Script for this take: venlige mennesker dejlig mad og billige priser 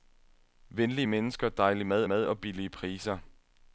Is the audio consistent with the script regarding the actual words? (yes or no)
no